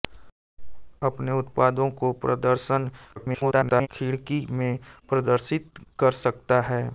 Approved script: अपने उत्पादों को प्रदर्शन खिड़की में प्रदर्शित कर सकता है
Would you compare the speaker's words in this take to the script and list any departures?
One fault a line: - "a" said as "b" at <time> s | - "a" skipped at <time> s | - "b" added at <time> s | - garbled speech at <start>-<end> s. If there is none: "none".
- garbled speech at 3.2-3.9 s